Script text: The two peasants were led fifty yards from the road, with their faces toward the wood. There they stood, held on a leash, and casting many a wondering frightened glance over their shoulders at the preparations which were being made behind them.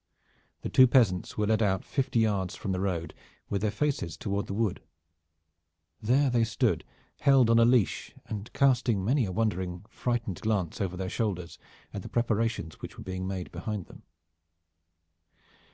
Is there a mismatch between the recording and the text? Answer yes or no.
yes